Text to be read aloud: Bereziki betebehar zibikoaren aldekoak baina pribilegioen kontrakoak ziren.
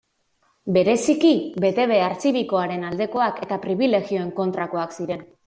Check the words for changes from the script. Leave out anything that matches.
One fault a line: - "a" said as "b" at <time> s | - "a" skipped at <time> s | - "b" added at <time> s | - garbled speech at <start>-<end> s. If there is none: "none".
- "baina" said as "eta" at 3.5 s